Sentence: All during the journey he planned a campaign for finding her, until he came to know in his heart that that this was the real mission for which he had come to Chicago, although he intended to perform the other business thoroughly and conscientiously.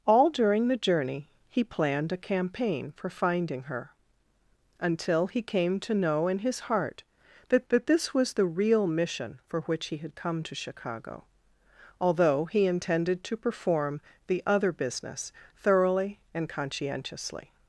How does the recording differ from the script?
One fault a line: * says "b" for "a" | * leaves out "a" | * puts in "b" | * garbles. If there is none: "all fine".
all fine